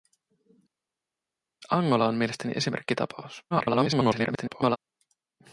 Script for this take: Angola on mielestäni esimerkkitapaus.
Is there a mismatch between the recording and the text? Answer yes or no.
yes